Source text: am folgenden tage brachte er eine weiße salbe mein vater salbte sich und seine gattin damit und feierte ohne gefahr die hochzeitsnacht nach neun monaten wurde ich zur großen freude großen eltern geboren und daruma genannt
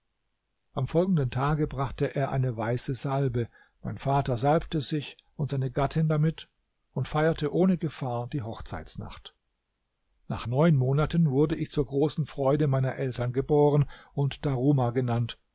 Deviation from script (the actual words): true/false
true